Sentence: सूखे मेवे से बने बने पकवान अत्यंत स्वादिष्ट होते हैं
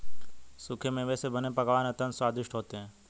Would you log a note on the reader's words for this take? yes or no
yes